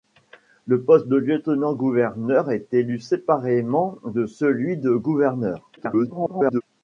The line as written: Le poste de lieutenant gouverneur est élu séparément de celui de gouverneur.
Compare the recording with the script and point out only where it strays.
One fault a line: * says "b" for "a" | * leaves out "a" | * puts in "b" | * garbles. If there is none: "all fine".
* garbles